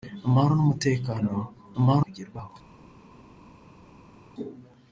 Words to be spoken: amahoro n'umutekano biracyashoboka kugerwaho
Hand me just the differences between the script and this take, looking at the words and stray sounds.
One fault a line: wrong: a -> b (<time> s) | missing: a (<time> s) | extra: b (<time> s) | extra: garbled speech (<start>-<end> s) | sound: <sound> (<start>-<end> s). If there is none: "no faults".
wrong: biracyashoboka -> amahoro (1.8 s)